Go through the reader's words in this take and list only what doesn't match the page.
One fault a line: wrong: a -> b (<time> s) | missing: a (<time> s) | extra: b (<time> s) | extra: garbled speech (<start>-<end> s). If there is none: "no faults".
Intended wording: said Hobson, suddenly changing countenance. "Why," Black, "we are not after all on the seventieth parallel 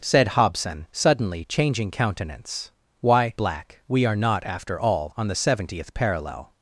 no faults